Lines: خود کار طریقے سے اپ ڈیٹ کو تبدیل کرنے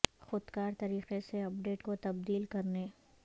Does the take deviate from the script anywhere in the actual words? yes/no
no